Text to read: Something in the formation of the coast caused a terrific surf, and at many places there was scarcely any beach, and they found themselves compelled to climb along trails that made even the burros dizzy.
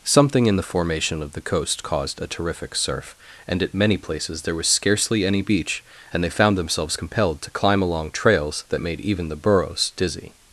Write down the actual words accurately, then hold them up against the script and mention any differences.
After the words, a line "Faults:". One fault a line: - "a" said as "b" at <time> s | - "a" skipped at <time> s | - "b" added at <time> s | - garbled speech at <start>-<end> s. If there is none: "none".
Something in the formation of the coast caused a terrific surf, and at many places there was scarcely any beach, and they found themselves compelled to climb along trails that made even the burros dizzy.
Faults:
none